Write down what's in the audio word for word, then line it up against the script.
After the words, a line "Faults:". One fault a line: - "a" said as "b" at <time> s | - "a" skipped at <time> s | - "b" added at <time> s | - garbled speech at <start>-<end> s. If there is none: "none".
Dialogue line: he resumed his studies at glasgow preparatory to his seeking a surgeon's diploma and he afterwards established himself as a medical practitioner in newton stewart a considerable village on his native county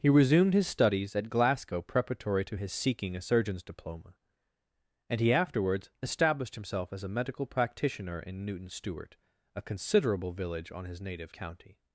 he resumed his studies at glasgow preparatory to his seeking a surgeon's diploma and he afterwards established himself as a medical practitioner in newton stewart a considerable village on his native county
Faults:
none